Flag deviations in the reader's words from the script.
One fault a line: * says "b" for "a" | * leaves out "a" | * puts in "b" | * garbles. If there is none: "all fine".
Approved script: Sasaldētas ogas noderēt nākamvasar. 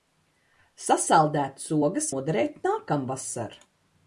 all fine